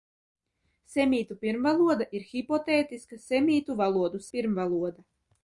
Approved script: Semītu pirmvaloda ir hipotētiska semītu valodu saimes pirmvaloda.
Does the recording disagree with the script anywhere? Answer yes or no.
yes